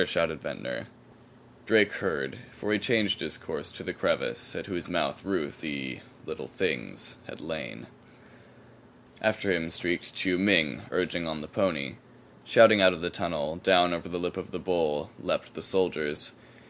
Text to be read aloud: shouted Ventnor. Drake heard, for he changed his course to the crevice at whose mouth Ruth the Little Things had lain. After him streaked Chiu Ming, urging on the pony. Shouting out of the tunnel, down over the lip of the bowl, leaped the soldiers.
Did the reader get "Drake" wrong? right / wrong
right